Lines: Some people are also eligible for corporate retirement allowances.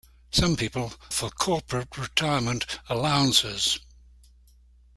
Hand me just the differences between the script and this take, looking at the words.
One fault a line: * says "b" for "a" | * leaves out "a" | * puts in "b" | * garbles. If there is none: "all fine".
* leaves out "are also eligible"